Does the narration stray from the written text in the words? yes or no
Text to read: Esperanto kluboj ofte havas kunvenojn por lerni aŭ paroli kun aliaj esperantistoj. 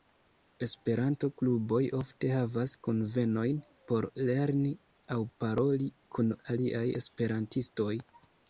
no